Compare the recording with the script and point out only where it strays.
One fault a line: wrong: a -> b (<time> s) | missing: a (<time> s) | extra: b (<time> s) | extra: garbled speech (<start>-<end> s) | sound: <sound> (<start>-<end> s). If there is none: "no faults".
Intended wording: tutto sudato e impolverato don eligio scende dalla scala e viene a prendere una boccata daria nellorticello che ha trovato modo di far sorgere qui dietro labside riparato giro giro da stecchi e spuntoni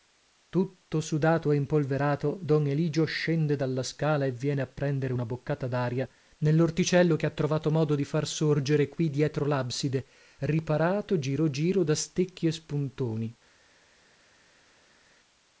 no faults